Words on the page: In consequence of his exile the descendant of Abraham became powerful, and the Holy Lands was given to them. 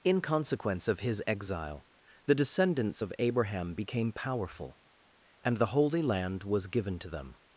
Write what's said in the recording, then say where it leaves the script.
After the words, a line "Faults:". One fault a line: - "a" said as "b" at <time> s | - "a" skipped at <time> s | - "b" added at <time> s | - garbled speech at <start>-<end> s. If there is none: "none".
In consequence of his exile the descendants of Abraham became powerful, and the Holy Land was given to them.
Faults:
- "descendant" said as "descendants" at 2.3 s
- "Lands" said as "Land" at 6.0 s